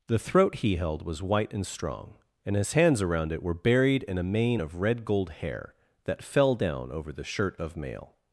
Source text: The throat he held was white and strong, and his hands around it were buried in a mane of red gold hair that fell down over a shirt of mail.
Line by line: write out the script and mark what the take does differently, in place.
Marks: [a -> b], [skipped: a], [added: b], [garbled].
The throat he held was white and strong, and his hands around it were buried in a mane of red gold hair that fell down over [a -> the] shirt of mail.